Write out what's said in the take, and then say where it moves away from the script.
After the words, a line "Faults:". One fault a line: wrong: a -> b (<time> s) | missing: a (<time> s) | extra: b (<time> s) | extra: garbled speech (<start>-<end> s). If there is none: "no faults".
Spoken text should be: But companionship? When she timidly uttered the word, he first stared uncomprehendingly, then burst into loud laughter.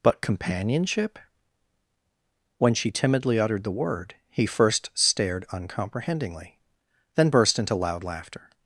But companionship? When she timidly uttered the word, he first stared uncomprehendingly, then burst into loud laughter.
Faults:
no faults